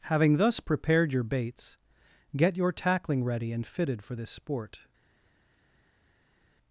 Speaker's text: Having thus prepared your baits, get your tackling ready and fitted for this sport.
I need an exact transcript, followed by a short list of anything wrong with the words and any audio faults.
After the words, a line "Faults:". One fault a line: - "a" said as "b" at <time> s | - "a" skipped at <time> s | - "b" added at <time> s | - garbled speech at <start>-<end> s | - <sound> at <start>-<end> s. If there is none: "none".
Having thus prepared your baits, get your tackling ready and fitted for this sport.
Faults:
none